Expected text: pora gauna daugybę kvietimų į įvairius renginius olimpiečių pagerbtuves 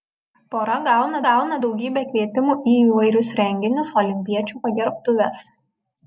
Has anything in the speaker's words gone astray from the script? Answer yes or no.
yes